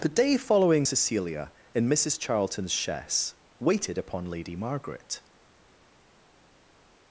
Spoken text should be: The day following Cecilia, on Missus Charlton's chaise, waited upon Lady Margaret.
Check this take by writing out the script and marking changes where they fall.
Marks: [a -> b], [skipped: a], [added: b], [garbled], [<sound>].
The day following Cecilia, [on -> in] Missus Charlton's chaise, waited upon Lady Margaret.